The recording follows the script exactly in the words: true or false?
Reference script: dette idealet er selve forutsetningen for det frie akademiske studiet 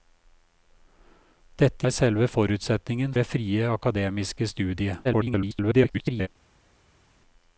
false